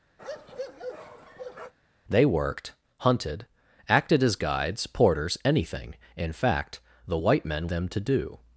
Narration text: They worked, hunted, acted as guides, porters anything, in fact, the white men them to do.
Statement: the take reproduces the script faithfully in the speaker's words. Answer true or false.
true